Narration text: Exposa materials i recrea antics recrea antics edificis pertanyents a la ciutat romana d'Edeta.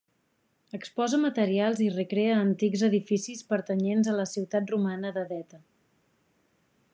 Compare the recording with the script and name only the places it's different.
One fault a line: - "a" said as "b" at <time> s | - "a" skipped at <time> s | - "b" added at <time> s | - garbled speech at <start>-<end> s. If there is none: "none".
- "recrea antics" skipped at 2.9 s